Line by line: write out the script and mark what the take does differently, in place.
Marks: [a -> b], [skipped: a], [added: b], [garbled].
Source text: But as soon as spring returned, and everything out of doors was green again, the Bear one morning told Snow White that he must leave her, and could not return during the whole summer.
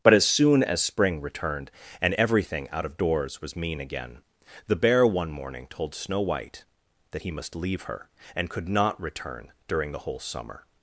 But as soon as spring returned, and everything out of doors was [green -> mean] again, the Bear one morning told Snow White that he must leave her, and could not return during the whole summer.